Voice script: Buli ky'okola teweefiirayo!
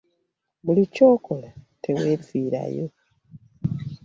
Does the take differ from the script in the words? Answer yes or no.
no